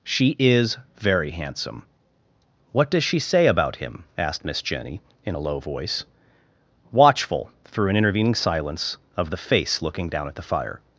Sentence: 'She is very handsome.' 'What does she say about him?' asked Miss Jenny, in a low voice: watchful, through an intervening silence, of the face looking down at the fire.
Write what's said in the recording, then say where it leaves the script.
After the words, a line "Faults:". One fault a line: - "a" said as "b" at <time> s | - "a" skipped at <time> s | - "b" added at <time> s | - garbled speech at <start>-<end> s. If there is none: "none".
'She is very handsome.' 'What does she say about him?' asked Miss Jenny, in a low voice: watchful, through an intervening silence, of the face looking down at the fire.
Faults:
none